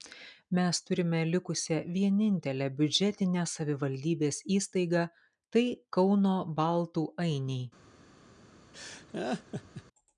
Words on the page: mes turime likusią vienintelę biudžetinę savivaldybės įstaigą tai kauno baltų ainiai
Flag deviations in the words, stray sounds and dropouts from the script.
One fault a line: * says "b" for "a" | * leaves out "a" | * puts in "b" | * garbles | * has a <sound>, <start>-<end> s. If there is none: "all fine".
* has a laugh, 8.7-9.8 s